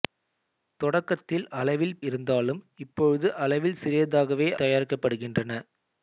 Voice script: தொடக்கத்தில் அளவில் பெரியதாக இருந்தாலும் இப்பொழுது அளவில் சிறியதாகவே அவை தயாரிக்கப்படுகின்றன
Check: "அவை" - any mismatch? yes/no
yes